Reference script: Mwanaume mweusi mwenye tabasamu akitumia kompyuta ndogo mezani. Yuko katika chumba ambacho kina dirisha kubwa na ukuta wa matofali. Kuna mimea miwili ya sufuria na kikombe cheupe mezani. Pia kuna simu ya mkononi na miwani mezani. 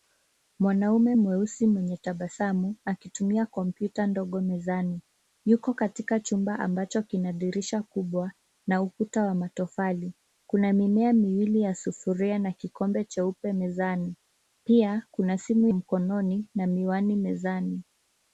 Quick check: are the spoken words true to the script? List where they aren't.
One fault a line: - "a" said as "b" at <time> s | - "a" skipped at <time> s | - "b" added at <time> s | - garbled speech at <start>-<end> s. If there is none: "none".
- "ya" skipped at 15.7 s